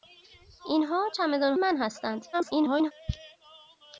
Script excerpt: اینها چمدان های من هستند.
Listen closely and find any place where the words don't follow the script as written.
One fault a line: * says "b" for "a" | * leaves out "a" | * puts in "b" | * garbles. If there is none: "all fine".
* leaves out "های"
* garbles